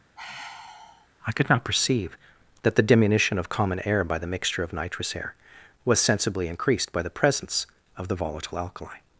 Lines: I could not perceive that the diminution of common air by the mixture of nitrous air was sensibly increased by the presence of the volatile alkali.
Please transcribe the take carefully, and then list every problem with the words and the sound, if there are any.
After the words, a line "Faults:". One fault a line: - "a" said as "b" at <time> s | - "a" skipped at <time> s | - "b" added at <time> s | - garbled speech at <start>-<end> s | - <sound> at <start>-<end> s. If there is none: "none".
I could not perceive that the diminution of common air by the mixture of nitrous air was sensibly increased by the presence of the volatile alkali.
Faults:
- sigh at 0.1-1.1 s